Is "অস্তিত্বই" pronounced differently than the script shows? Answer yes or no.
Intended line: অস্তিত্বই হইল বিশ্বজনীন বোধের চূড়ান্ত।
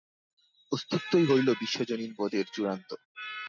no